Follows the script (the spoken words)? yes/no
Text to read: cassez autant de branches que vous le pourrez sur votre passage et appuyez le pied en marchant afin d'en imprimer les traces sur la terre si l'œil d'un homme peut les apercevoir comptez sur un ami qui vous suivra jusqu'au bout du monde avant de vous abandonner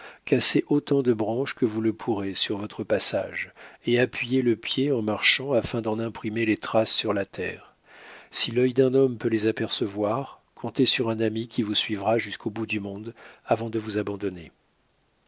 yes